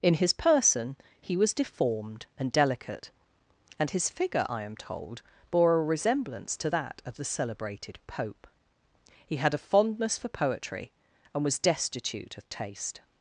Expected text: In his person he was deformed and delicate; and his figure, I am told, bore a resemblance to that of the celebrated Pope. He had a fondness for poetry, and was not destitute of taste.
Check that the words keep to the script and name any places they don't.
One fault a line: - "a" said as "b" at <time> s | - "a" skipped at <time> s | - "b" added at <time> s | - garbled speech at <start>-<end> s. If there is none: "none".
- "not" skipped at 11.6 s